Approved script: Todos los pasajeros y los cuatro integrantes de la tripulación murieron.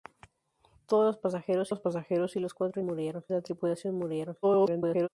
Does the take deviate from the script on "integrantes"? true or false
true